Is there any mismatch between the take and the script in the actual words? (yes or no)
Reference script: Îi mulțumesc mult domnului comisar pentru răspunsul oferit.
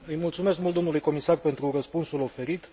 no